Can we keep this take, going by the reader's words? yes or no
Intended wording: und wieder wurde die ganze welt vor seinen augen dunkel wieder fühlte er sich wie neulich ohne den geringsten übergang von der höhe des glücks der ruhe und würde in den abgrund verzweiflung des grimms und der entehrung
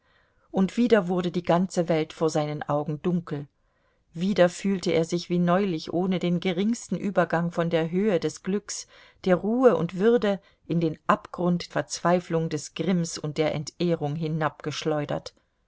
yes